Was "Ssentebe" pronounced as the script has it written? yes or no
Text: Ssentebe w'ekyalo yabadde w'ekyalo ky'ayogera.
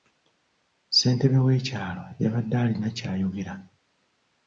yes